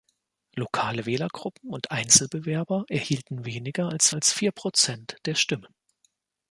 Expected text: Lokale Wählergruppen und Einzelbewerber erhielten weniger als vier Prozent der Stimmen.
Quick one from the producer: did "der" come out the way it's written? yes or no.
yes